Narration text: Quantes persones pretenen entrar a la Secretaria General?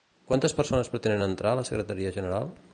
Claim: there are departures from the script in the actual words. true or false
false